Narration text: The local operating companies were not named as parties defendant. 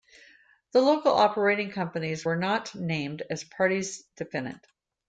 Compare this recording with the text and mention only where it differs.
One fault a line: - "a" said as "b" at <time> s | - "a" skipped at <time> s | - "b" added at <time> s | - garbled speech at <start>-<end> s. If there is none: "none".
none